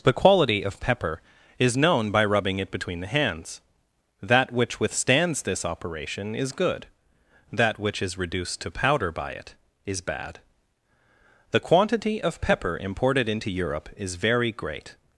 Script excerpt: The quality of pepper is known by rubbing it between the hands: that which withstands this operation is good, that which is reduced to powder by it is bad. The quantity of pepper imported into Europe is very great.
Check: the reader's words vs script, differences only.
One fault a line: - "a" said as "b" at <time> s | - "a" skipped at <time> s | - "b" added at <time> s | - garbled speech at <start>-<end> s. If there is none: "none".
none